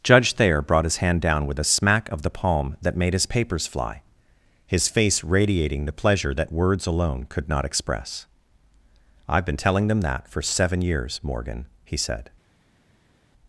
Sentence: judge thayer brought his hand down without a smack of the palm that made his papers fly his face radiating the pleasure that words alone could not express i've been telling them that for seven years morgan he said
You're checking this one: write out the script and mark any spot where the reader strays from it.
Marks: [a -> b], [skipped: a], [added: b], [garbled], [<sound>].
judge thayer brought his hand down [without -> with] a smack of the palm that made his papers fly his face radiating the pleasure that words alone could not express i've been telling them that for seven years morgan he said